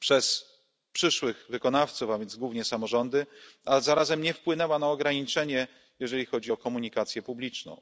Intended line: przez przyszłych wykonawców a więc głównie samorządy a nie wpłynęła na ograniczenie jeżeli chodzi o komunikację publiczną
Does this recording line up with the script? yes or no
no